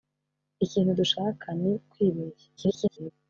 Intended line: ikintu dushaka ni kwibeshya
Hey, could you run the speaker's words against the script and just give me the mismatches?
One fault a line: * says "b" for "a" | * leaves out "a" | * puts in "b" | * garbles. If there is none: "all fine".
* garbles